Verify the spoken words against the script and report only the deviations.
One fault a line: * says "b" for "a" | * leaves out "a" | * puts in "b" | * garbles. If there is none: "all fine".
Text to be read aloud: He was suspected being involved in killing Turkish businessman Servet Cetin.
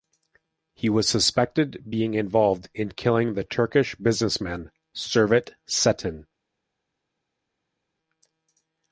* puts in "the"